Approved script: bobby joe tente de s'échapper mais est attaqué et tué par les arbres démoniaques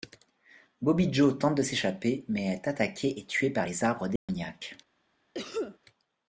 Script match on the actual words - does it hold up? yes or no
yes